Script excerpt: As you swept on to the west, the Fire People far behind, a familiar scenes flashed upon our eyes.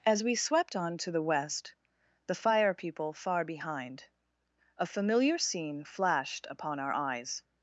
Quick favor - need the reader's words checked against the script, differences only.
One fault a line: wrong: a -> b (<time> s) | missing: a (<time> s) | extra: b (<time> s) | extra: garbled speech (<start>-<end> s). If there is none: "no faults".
wrong: you -> we (0.2 s)
wrong: scenes -> scene (5.4 s)